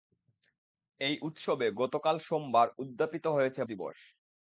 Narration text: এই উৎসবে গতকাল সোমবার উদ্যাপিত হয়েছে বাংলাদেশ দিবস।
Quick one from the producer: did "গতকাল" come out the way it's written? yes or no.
yes